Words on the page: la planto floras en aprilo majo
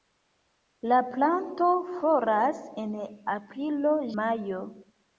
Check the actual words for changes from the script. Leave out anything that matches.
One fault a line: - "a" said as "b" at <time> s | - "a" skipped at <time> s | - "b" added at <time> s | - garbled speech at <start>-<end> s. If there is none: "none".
none